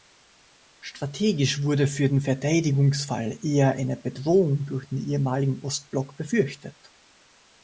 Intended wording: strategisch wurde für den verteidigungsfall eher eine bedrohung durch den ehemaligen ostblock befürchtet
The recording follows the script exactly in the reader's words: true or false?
true